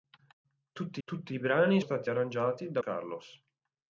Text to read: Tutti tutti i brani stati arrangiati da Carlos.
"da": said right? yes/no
yes